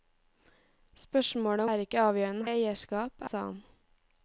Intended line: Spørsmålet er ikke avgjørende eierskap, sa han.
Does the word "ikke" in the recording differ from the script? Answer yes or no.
no